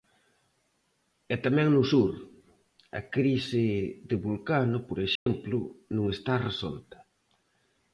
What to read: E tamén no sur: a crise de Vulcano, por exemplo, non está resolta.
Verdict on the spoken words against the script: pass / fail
pass